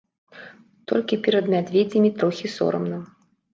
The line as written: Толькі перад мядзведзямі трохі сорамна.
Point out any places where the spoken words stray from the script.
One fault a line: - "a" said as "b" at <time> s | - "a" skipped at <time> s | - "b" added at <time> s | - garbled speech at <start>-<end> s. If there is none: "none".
none